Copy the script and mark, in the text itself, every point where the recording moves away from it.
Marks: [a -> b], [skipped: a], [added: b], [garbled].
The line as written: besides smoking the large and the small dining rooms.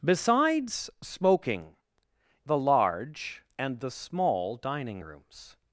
besides smoking the large and the small dining rooms.